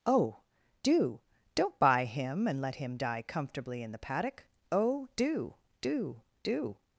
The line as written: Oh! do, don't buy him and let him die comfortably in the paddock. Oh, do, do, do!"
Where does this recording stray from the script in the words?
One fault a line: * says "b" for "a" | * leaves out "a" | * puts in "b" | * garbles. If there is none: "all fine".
all fine